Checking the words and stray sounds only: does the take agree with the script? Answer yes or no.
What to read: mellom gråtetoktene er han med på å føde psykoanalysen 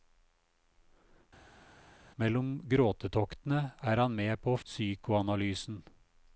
no